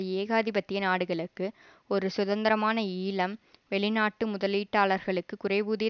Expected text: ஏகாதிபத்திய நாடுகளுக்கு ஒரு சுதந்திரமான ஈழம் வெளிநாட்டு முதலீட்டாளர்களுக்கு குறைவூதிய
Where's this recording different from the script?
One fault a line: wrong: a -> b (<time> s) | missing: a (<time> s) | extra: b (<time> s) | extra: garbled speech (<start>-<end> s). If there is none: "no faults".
no faults